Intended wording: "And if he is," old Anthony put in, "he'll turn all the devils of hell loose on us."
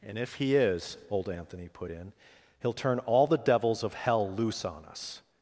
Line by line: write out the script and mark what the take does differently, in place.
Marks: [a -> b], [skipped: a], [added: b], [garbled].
"And if he is," old Anthony put in, "he'll turn all the devils of hell loose on us."